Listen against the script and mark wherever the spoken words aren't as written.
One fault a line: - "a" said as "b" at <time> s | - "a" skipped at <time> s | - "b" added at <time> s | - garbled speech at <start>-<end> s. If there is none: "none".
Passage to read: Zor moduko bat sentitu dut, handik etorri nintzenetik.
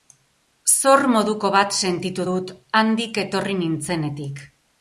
none